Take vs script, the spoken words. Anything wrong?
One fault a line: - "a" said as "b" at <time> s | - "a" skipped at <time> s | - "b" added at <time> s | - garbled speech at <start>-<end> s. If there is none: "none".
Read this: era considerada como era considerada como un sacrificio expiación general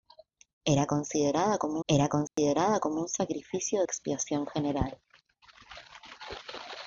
none